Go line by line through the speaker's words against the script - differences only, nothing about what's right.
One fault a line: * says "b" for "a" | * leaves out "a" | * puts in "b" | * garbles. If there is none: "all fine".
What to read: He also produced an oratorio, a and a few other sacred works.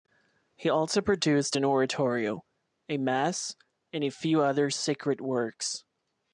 * puts in "mass"